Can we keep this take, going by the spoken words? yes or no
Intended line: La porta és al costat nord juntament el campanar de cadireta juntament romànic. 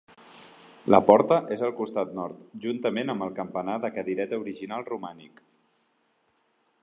no